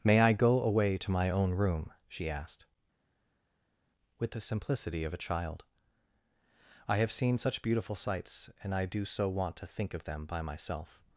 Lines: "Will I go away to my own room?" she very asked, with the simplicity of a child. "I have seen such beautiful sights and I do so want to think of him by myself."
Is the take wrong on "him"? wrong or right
wrong